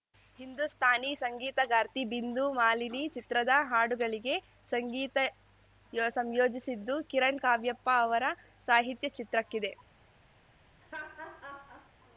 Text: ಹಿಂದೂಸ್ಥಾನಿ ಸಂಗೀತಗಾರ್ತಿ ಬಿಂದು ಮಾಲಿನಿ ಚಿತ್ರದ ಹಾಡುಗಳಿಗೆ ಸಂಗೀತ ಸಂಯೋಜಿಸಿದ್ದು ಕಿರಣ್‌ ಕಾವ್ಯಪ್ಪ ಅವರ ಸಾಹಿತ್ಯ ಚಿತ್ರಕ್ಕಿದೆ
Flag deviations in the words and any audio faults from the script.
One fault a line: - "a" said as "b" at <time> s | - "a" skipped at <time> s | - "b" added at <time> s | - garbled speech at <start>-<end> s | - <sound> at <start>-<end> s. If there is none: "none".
- laugh at 10.8-11.9 s